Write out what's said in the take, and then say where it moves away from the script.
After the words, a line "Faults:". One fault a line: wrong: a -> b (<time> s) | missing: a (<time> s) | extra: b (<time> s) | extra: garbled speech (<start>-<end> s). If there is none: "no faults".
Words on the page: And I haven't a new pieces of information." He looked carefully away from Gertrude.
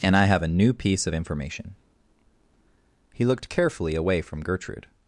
And I have a new piece of information." He looked carefully away from Gertrude.
Faults:
wrong: haven't -> have (0.2 s)
wrong: pieces -> piece (0.7 s)